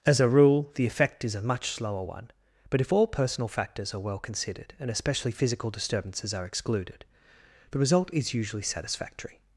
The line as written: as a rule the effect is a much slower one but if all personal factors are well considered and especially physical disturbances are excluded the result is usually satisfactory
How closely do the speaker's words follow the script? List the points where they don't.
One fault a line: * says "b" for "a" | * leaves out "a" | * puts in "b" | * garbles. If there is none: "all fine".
all fine